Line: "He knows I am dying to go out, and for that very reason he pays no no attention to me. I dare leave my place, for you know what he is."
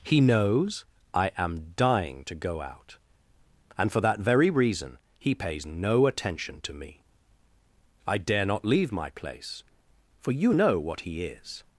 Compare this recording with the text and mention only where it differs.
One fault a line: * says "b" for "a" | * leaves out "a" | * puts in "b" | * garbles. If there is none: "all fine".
* leaves out "no"
* puts in "not"